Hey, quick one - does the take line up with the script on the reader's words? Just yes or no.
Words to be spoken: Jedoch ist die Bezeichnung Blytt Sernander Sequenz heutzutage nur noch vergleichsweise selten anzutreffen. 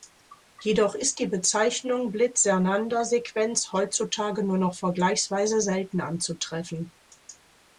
yes